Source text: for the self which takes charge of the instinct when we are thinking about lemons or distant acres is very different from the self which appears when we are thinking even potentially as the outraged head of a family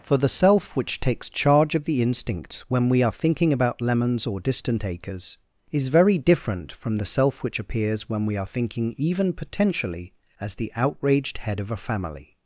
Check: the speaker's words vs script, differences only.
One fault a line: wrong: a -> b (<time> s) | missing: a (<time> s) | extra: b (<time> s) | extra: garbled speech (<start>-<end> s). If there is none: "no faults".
no faults